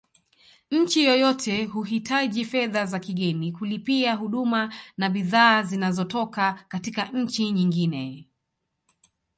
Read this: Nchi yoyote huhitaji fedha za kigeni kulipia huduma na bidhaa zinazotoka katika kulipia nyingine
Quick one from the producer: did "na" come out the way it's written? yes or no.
yes